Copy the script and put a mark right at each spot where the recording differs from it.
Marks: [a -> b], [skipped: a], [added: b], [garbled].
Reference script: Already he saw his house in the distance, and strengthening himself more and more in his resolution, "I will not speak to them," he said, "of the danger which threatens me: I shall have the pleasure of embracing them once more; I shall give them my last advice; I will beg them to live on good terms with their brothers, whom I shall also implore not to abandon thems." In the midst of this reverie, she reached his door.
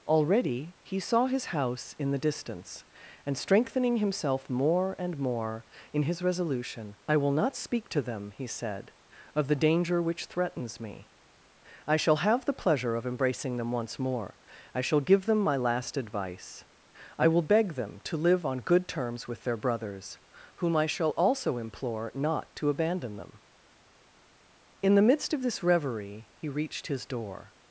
Already he saw his house in the distance, and strengthening himself more and more in his resolution, "I will not speak to them," he said, "of the danger which threatens me: I shall have the pleasure of embracing them once more; I shall give them my last advice; I will beg them to live on good terms with their brothers, whom I shall also implore not to abandon [thems." -> them] In the midst of this reverie, [she -> he] reached his door.